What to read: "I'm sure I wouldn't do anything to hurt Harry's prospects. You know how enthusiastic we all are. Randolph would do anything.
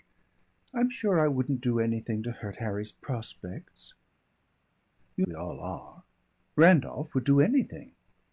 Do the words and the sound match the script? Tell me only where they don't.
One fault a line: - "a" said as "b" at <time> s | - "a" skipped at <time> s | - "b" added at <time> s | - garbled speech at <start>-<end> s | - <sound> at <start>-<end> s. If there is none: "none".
- "know how enthusiastic" skipped at 5.2 s